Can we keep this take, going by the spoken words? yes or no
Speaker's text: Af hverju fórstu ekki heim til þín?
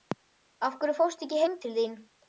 yes